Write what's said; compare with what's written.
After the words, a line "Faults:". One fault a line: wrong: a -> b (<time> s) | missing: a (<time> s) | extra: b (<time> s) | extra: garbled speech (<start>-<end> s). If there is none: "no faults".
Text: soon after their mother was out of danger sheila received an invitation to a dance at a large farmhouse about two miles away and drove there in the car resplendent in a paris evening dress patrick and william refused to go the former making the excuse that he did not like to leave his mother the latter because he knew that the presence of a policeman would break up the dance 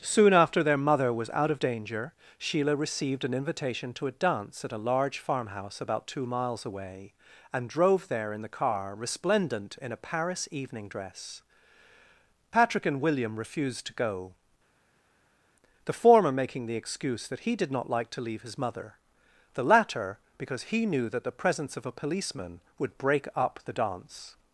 soon after their mother was out of danger sheila received an invitation to a dance at a large farmhouse about two miles away and drove there in the car resplendent in a paris evening dress patrick and william refused to go the former making the excuse that he did not like to leave his mother the latter because he knew that the presence of a policeman would break up the dance
Faults:
no faults